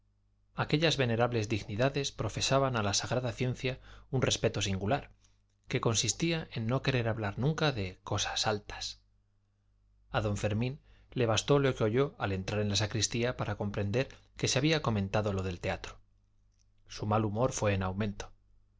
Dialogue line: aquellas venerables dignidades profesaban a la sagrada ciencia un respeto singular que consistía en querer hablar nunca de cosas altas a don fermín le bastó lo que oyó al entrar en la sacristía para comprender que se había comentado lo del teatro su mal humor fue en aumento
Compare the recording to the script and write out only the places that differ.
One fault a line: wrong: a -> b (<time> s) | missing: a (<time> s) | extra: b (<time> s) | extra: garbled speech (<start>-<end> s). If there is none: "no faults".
extra: no (6.7 s)